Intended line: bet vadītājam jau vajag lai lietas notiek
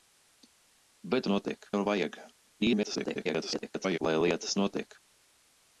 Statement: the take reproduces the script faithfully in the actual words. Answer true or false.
false